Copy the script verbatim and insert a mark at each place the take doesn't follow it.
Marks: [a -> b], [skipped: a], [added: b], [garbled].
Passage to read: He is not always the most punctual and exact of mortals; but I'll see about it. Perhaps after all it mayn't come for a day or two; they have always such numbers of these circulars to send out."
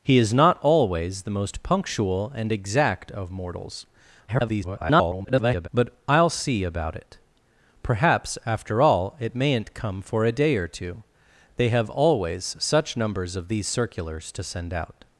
He is not always the most punctual and exact of mortals; [garbled] but I'll see about it. Perhaps after all it mayn't come for a day or two; they have always such numbers of these circulars to send out."